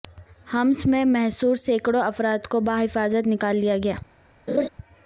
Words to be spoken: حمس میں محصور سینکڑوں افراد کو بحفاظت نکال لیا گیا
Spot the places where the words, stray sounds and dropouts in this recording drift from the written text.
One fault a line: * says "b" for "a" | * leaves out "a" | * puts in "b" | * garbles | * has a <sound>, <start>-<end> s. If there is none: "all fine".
* has a laugh, 4.5-4.7 s